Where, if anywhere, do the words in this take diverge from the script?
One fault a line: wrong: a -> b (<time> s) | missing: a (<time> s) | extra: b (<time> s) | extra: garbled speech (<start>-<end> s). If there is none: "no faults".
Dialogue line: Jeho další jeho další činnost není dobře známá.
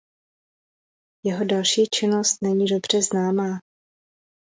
missing: jeho další (1.9 s)